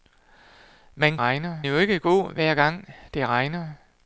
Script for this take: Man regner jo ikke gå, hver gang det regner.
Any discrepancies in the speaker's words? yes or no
no